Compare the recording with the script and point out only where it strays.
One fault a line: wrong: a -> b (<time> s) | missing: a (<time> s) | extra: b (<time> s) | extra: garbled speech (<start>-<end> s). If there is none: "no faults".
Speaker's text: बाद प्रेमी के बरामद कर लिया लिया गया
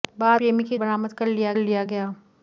no faults